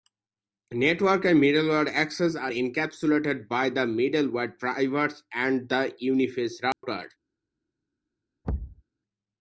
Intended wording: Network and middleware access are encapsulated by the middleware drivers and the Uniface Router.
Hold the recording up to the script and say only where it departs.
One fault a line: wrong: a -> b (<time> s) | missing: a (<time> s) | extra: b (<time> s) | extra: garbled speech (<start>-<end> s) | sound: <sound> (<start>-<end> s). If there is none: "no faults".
sound: dropout (6.7-6.8 s)
sound: thud (8.4-8.8 s)